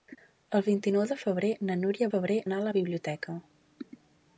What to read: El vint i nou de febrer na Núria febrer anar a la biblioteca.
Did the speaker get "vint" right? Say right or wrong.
right